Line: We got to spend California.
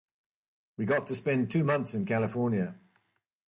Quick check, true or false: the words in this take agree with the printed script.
false